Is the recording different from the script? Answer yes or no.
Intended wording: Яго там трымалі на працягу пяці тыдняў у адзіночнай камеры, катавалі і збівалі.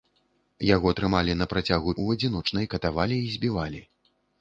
yes